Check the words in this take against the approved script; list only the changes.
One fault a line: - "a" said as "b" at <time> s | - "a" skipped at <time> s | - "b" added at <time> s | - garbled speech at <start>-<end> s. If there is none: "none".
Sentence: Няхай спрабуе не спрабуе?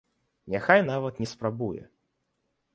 - "спрабуе" said as "нават" at 0.9 s